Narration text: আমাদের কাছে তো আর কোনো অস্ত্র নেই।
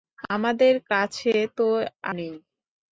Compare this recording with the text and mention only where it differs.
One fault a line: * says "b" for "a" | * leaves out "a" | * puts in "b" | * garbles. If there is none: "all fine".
* leaves out "আর কোনো অস্ত্র"